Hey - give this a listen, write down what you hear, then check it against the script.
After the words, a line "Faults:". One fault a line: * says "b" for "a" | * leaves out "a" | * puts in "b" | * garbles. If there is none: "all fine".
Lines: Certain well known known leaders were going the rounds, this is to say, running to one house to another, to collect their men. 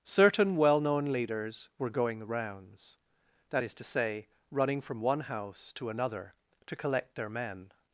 Certain well known leaders were going the rounds, that is to say, running from one house to another, to collect their men.
Faults:
* leaves out "known"
* says "that" for "this"
* says "from" for "to"